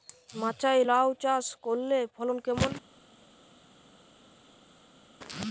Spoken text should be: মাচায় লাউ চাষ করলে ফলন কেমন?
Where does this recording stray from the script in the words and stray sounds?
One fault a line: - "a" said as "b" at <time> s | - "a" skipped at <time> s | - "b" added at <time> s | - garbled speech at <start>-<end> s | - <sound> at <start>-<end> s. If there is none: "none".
none